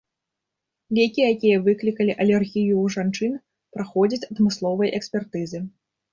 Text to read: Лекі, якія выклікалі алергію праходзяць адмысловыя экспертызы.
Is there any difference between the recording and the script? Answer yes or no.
yes